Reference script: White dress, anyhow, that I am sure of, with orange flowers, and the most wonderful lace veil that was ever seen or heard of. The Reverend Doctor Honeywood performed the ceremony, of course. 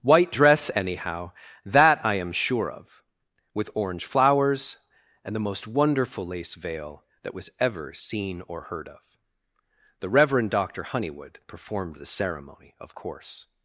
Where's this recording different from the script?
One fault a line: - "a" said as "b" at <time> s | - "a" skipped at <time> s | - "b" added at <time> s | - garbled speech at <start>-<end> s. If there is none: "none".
none